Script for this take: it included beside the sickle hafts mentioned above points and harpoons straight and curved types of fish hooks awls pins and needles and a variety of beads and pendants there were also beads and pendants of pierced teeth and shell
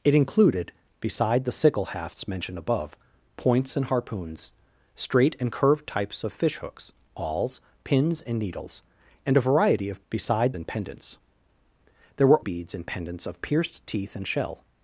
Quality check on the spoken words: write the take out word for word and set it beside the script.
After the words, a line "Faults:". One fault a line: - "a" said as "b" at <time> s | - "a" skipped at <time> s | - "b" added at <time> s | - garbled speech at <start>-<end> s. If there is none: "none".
it included beside the sickle hafts mentioned above points and harpoons straight and curved types of fish hooks awls pins and needles and a variety of beside and pendants there were beads and pendants of pierced teeth and shell
Faults:
- "beads" said as "beside" at 10.1 s
- "also" skipped at 12.4 s